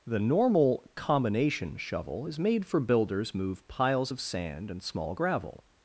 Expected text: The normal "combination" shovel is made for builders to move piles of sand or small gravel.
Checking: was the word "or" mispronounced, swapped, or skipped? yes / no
yes